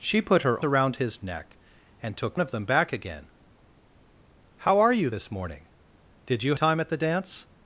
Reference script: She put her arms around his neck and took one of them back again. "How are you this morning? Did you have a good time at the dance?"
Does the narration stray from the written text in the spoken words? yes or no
yes